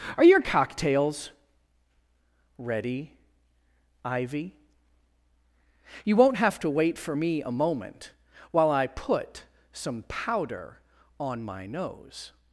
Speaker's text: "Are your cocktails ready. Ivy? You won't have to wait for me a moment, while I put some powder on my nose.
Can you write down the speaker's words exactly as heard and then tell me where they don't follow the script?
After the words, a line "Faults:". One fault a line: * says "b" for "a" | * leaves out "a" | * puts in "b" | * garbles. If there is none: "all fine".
"Are your cocktails ready. Ivy? You won't have to wait for me a moment, while I put some powder on my nose.
Faults:
all fine